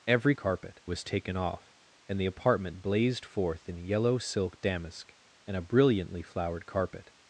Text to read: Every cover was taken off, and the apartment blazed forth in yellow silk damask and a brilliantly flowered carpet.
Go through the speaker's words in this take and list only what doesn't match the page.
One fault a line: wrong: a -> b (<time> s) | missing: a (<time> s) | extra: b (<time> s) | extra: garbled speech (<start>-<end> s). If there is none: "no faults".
wrong: cover -> carpet (0.3 s)